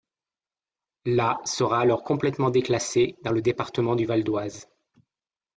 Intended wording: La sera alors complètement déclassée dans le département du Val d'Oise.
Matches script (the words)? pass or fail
pass